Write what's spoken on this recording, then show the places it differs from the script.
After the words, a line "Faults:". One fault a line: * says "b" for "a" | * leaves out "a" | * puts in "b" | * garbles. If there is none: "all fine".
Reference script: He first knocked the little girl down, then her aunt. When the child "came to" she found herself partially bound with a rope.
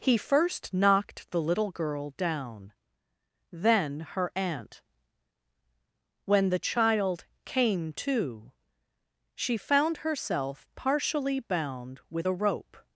He first knocked the little girl down, then her aunt. When the child "came to" she found herself partially bound with a rope.
Faults:
all fine